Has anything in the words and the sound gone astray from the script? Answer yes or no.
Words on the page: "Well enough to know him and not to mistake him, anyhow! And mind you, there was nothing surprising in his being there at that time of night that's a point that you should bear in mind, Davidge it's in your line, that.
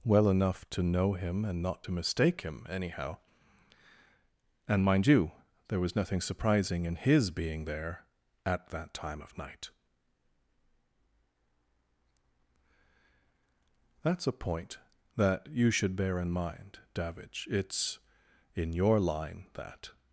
no